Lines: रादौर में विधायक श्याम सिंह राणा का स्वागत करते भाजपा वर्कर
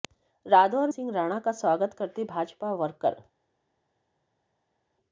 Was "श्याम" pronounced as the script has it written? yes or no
no